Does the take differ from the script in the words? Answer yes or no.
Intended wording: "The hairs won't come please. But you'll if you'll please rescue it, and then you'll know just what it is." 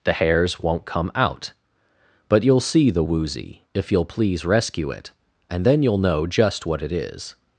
yes